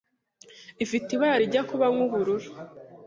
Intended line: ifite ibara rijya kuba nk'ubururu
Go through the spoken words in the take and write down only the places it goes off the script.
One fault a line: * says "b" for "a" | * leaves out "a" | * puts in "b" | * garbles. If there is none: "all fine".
all fine